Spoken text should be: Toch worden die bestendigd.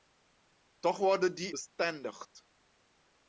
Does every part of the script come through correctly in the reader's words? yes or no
yes